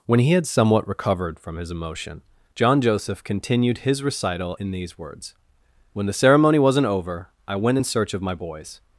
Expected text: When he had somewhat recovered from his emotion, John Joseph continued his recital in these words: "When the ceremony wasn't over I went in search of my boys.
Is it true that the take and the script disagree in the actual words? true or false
false